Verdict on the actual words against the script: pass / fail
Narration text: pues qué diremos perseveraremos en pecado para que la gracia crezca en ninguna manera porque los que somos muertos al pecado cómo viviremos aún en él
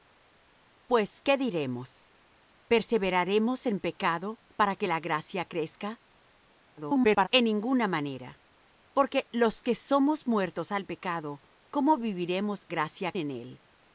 fail